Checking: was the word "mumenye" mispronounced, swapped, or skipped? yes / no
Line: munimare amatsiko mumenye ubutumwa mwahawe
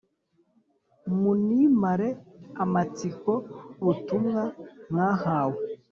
yes